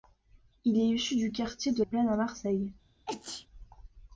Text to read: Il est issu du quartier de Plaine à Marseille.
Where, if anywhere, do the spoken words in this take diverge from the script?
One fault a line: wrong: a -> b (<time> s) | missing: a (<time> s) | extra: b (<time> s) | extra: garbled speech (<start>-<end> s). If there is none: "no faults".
no faults